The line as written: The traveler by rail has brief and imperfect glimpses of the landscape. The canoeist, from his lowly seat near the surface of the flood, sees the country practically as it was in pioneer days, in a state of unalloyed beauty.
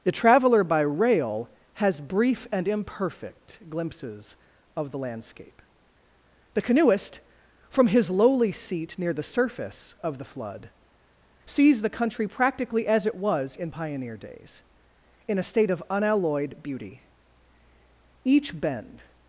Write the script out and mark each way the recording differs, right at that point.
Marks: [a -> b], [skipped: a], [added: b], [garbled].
The traveler by rail has brief and imperfect glimpses of the landscape. The canoeist, from his lowly seat near the surface of the flood, sees the country practically as it was in pioneer days, in a state of unalloyed beauty. [added: Each bend]